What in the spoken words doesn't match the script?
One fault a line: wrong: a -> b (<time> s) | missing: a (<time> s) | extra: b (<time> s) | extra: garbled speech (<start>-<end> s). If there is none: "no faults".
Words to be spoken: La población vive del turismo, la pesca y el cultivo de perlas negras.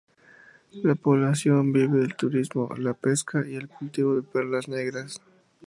no faults